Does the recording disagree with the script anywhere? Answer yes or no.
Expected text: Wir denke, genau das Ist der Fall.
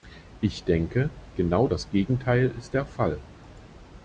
yes